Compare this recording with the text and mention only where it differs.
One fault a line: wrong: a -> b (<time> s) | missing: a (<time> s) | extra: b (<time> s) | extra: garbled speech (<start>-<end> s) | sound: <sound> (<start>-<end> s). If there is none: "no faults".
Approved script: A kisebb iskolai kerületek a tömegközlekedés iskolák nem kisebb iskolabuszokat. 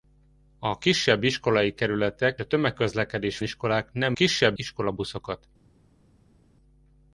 no faults